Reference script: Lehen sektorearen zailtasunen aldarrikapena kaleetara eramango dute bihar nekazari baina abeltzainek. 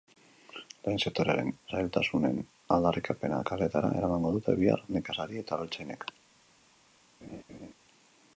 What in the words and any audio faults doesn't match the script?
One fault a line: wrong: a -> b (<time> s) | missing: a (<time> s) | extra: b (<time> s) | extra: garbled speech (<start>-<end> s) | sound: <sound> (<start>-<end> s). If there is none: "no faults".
wrong: baina -> eta (5.5 s)
sound: laugh (7.2-7.7 s)